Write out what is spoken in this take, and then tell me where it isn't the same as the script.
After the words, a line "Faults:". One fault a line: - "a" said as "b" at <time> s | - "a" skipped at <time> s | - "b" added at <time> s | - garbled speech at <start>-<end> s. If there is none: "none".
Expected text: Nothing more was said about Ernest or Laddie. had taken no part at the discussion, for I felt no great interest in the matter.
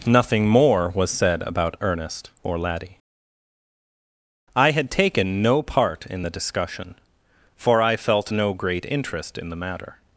Nothing more was said about Ernest or Laddie. I had taken no part in the discussion, for I felt no great interest in the matter.
Faults:
- "I" added at 4.5 s
- "at" said as "in" at 6.1 s